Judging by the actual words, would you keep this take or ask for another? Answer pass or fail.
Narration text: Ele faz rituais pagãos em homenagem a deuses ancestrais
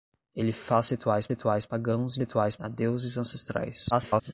fail